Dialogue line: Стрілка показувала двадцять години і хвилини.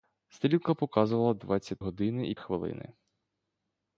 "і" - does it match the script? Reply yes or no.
yes